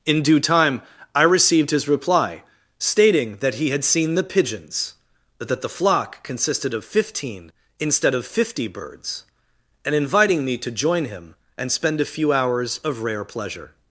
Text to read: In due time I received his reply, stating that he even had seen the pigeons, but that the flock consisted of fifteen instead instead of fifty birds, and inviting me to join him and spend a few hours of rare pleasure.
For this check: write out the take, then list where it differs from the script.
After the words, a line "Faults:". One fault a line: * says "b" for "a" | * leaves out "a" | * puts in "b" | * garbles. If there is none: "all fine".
In due time I received his reply, stating that he had seen the pigeons, but that the flock consisted of fifteen instead of fifty birds, and inviting me to join him and spend a few hours of rare pleasure.
Faults:
* leaves out "even"
* leaves out "instead"